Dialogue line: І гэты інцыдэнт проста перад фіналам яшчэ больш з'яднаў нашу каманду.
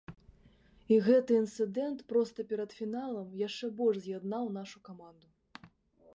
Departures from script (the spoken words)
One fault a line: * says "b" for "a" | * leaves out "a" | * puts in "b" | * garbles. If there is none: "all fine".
all fine